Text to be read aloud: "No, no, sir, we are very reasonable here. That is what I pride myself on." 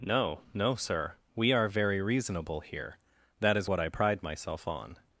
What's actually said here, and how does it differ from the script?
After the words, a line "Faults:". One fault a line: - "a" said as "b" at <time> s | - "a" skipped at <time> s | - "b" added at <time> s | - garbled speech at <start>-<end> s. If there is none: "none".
"No, no, sir, we are very reasonable here. That is what I pride myself on."
Faults:
none